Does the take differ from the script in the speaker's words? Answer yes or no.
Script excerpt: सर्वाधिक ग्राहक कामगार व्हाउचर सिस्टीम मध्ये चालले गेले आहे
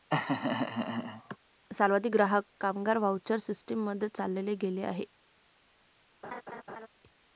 no